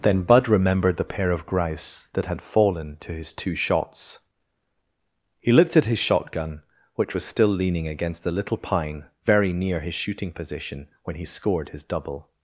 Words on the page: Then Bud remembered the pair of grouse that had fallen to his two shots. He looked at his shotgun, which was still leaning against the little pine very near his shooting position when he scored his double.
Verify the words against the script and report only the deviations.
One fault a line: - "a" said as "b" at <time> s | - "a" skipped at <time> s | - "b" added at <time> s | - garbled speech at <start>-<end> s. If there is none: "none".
none